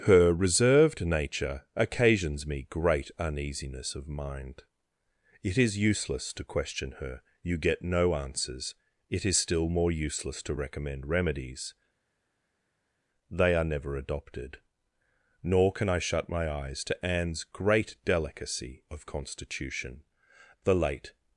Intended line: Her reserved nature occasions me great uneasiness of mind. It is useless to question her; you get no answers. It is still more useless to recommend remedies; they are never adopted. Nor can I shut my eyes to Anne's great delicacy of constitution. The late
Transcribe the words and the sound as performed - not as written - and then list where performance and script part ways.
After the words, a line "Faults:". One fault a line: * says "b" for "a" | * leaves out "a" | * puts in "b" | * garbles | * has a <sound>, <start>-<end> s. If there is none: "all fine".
Her reserved nature occasions me great uneasiness of mind. It is useless to question her; you get no answers. It is still more useless to recommend remedies; they are never adopted. Nor can I shut my eyes to Anne's great delicacy of constitution. The late
Faults:
all fine